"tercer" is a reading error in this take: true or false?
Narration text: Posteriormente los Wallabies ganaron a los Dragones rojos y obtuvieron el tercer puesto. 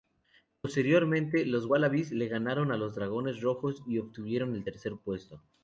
false